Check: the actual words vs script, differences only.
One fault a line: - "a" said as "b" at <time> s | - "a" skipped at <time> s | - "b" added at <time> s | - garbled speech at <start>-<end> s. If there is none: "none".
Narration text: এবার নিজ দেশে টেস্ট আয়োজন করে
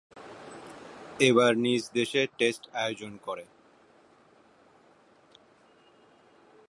none